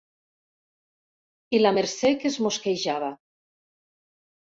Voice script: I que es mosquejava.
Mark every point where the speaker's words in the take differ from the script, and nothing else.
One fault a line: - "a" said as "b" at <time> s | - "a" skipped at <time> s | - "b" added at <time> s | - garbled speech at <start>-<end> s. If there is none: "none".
- "la Mercè" added at 1.6 s